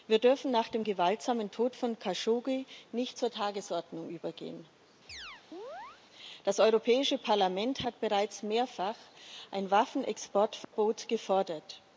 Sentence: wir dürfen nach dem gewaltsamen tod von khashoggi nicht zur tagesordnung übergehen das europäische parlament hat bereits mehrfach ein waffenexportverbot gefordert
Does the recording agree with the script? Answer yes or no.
yes